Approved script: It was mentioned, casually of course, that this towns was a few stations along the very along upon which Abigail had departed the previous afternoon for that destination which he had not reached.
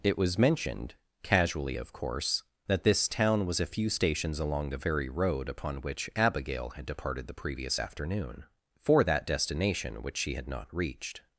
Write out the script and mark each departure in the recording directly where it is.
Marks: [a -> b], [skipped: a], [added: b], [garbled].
It was mentioned, casually of course, that this [towns -> town] was a few stations along the very [along -> road] upon which Abigail had departed the previous afternoon for that destination which [he -> she] had not reached.